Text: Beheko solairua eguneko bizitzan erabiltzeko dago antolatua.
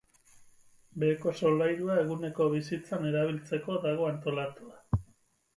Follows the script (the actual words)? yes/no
yes